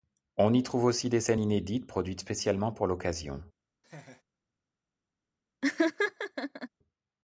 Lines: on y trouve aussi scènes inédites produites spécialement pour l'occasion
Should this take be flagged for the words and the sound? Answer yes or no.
yes